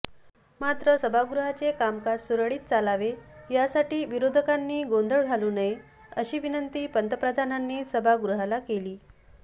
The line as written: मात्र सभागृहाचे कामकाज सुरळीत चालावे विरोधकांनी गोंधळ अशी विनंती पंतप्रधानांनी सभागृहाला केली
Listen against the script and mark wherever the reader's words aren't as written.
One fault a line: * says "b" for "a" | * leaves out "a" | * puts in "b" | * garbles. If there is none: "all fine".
* puts in "यासाठी"
* puts in "घालू नये"